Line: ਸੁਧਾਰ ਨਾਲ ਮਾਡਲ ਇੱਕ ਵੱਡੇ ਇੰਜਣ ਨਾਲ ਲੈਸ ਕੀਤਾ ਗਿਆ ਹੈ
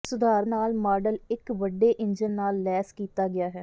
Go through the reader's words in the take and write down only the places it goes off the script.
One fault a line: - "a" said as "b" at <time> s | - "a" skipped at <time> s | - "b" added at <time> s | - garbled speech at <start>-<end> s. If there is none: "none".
none